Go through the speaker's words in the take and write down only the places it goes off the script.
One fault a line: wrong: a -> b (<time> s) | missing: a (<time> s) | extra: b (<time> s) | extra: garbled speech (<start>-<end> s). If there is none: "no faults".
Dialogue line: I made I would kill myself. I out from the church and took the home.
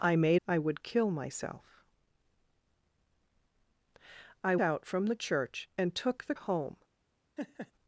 no faults